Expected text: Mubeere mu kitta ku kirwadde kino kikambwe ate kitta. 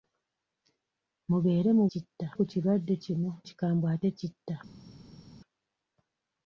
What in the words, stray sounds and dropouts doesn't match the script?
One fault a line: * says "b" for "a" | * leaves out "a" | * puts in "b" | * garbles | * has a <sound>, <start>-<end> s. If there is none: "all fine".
all fine